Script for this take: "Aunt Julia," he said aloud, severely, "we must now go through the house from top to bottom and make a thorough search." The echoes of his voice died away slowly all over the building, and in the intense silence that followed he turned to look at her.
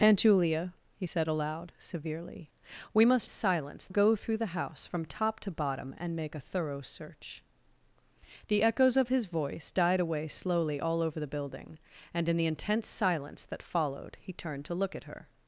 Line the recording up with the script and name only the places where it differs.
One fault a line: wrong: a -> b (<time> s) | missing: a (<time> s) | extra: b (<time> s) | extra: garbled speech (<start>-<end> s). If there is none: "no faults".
wrong: now -> silence (3.3 s)